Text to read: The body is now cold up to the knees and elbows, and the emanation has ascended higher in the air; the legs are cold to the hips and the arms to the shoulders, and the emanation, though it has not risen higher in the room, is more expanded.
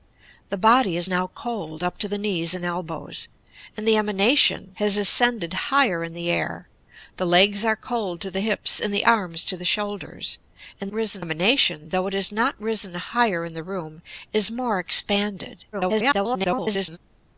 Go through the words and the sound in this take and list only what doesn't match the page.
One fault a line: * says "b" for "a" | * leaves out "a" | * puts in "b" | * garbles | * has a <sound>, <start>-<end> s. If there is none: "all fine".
* says "risen" for "the"
* garbles